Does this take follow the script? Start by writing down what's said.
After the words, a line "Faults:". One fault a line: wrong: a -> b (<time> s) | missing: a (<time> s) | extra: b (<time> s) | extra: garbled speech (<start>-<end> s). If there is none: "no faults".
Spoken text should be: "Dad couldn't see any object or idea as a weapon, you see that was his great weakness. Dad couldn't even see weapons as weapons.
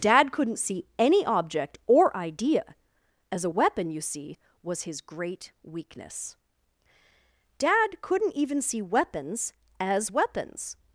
"Dad couldn't see any object or idea as a weapon, you see was his great weakness. Dad couldn't even see weapons as weapons.
Faults:
missing: that (4.4 s)